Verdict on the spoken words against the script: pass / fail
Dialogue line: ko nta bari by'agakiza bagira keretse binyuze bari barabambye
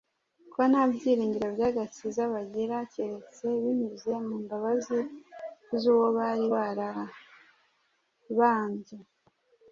fail